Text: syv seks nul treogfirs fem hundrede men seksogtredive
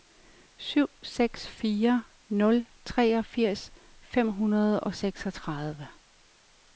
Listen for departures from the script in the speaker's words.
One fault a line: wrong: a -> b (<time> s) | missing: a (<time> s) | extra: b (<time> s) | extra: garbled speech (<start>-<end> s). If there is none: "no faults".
extra: fire (1.5 s)
wrong: men -> og (4.8 s)